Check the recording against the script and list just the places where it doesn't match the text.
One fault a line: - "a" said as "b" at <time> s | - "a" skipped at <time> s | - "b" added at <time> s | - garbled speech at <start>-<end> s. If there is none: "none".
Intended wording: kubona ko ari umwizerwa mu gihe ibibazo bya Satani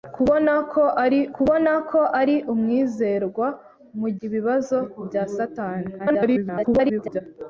- "kubona ko ari" added at 1.4 s
- "gihe" skipped at 4.1 s
- garbled speech at 6.0-7.2 s